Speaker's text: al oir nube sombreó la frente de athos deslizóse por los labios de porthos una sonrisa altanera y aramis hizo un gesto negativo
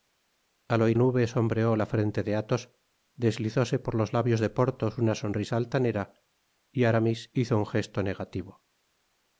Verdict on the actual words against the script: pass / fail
pass